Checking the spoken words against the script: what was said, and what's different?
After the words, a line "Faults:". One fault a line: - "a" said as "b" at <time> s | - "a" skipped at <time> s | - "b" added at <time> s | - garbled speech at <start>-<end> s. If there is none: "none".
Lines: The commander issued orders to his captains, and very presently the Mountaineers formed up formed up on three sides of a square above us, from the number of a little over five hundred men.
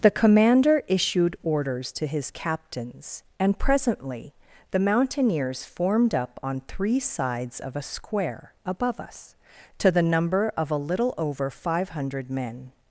The commander issued orders to his captains, and presently the Mountaineers formed up on three sides of a square above us, to the number of a little over five hundred men.
Faults:
- "very" skipped at 3.6 s
- "formed up" skipped at 6.4 s
- "from" said as "to" at 9.8 s